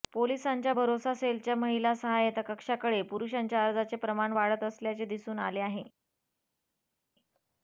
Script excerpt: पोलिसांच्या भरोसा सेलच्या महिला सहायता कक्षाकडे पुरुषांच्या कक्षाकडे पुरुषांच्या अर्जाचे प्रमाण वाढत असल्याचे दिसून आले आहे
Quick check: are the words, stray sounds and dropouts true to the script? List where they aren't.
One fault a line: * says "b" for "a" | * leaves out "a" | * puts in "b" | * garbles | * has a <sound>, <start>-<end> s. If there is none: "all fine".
* leaves out "कक्षाकडे पुरुषांच्या"